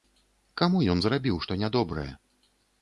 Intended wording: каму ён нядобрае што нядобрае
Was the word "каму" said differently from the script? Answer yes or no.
no